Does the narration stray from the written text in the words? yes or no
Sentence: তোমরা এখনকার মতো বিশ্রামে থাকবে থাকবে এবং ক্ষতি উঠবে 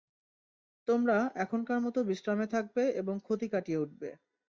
yes